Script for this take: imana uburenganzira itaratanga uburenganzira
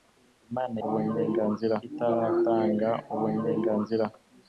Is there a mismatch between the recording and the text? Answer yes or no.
no